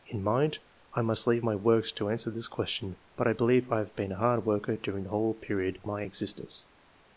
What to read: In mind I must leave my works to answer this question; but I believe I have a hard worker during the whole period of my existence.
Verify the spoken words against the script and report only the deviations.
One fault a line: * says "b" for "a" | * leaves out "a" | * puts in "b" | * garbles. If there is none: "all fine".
* puts in "been"